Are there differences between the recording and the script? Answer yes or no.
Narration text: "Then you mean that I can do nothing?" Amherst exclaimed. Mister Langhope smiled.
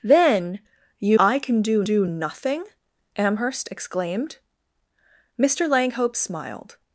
yes